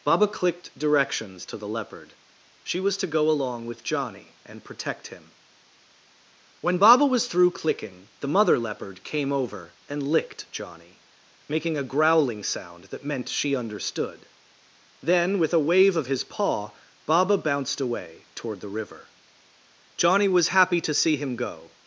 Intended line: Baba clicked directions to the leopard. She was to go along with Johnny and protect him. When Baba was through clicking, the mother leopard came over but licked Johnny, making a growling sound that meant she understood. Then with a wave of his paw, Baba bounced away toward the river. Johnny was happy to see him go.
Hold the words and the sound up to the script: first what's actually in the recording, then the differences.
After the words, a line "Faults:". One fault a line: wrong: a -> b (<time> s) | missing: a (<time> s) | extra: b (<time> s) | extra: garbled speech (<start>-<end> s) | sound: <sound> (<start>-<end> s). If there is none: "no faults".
Baba clicked directions to the leopard. She was to go along with Johnny and protect him. When Baba was through clicking, the mother leopard came over and licked Johnny, making a growling sound that meant she understood. Then with a wave of his paw, Baba bounced away toward the river. Johnny was happy to see him go.
Faults:
wrong: but -> and (9.9 s)